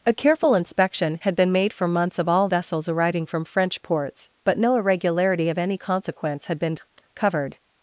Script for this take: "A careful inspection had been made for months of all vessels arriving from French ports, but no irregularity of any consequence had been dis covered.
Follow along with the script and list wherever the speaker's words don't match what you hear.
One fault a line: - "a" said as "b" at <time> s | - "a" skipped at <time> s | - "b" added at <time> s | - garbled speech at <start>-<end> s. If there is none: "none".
- "dis" skipped at 6.8 s